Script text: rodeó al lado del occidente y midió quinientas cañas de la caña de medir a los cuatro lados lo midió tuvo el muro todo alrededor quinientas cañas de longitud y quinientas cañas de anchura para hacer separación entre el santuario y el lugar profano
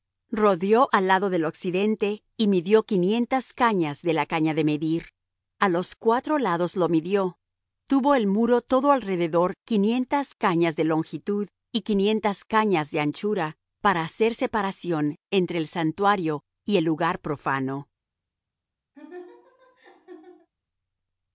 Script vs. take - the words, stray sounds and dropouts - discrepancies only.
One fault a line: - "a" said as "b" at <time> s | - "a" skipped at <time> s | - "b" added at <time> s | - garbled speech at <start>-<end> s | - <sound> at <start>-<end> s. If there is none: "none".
- laugh at 18.9-20.5 s